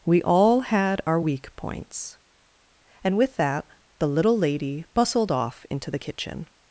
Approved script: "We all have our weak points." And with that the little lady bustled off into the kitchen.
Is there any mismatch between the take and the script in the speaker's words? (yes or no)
yes